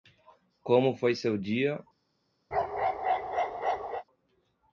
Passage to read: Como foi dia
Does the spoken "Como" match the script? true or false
true